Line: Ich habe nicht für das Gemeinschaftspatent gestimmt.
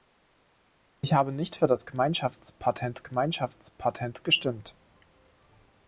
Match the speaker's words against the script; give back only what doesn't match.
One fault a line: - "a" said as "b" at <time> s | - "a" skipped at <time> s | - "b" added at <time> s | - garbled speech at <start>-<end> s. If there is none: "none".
- "Gemeinschaftspatent" added at 3.0 s